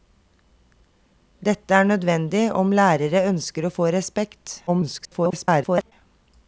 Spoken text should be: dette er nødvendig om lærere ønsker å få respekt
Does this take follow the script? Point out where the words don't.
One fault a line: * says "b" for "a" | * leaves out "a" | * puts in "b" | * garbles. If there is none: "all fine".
* garbles